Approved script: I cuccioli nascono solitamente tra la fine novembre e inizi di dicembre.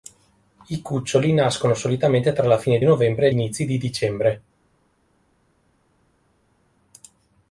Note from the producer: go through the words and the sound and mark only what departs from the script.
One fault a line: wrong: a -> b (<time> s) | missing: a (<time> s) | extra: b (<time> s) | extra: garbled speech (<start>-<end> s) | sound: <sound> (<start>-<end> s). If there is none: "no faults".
no faults